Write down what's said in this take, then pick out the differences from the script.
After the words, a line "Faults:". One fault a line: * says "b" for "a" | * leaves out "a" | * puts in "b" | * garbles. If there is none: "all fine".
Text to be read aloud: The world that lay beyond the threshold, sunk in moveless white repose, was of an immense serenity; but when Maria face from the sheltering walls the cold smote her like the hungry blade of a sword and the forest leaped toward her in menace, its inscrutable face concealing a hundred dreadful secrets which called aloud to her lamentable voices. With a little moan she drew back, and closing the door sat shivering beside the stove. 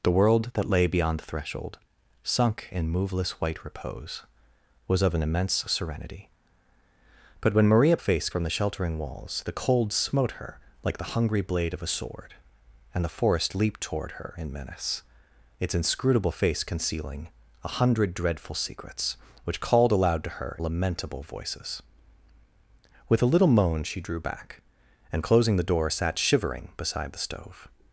The world that lay beyond the threshold, sunk in moveless white repose, was of an immense serenity; but when Maria face from the sheltering walls the cold smote her like the hungry blade of a sword and the forest leaped toward her in menace, its inscrutable face concealing a hundred dreadful secrets which called aloud to her lamentable voices. With a little moan she drew back, and closing the door sat shivering beside the stove.
Faults:
all fine